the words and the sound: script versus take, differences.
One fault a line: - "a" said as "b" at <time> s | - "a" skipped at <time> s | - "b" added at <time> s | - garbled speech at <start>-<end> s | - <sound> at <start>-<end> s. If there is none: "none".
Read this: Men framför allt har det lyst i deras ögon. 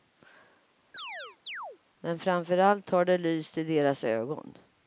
- chirp at 0.9-1.8 s